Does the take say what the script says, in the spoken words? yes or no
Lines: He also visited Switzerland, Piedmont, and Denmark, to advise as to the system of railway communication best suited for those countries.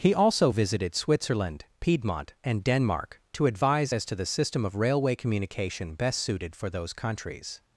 yes